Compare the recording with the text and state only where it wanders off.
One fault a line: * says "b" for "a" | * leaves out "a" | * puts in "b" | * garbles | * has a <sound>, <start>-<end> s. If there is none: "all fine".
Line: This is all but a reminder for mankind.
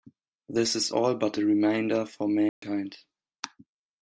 * has a dropout, 2.5-2.6 s